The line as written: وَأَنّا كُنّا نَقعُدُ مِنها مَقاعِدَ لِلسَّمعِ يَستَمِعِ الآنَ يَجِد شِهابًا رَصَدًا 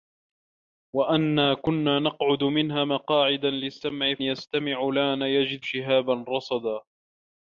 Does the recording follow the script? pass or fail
pass